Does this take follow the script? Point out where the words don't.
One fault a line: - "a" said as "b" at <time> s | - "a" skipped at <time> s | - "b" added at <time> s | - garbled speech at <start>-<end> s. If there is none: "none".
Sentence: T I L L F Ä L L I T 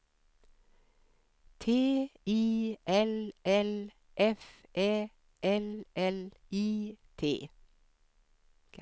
none